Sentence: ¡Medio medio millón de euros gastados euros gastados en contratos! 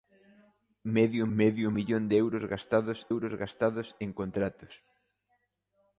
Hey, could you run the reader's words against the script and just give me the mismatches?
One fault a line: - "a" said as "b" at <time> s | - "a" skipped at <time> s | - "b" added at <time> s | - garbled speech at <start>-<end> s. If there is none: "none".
none